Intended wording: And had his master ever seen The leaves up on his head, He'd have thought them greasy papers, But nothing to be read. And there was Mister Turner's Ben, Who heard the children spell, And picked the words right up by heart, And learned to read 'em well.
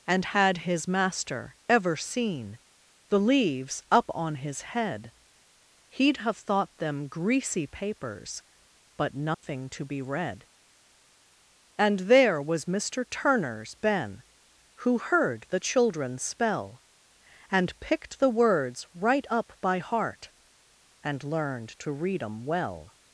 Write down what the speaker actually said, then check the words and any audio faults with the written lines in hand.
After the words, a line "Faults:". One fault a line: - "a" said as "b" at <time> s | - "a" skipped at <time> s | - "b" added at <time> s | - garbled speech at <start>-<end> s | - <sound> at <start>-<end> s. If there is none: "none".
And had his master ever seen The leaves up on his head, He'd have thought them greasy papers, But nothing to be read. And there was Mister Turner's Ben, Who heard the children spell, And picked the words right up by heart, And learned to read 'em well.
Faults:
- dropout at 9.3-9.4 s